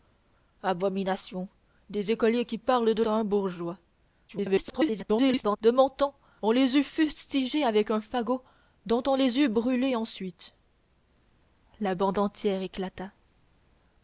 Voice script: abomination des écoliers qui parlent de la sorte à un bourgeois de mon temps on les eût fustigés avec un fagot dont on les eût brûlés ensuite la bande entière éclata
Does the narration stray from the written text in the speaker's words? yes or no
yes